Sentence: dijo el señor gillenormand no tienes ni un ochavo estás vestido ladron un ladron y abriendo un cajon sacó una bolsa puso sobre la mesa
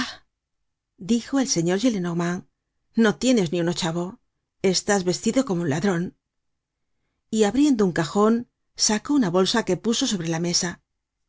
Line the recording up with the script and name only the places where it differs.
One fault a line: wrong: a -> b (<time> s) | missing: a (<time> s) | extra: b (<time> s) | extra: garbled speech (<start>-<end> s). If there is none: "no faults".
wrong: ladron -> como (5.5 s)
extra: que (9.6 s)